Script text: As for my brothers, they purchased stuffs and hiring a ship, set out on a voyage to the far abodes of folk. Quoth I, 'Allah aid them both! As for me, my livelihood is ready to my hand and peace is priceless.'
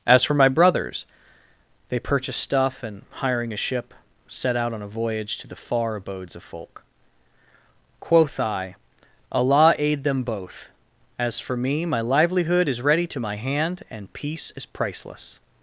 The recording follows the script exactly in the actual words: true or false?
false